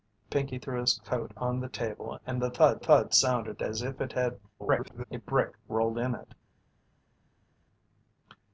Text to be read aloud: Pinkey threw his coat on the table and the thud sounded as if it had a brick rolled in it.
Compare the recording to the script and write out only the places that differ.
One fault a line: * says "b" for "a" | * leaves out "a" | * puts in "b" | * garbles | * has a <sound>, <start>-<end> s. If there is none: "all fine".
* puts in "thud"
* garbles